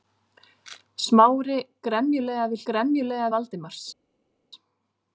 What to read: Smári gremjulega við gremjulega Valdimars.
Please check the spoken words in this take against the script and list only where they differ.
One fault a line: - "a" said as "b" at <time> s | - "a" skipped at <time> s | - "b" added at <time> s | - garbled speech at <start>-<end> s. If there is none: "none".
none